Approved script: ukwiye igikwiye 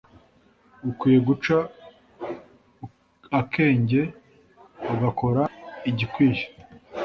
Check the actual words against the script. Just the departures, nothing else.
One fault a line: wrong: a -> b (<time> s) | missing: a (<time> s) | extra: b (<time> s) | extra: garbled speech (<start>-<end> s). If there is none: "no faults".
extra: guca akenge ugakora (1.3 s)